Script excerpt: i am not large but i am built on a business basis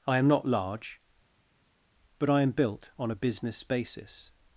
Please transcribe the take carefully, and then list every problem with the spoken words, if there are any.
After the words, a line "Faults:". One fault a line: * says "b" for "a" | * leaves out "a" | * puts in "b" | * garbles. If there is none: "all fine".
i am not large but i am built on a business basis
Faults:
all fine